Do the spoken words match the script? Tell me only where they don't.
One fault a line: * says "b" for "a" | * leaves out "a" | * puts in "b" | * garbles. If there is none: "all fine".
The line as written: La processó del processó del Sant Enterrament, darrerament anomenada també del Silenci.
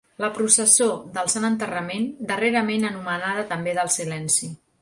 * leaves out "processó del"